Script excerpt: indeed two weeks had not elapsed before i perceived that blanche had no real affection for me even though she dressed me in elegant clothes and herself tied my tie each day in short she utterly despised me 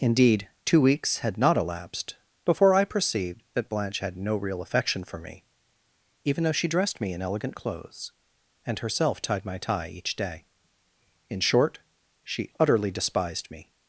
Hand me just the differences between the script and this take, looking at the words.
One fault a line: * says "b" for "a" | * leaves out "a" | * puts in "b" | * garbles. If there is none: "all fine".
all fine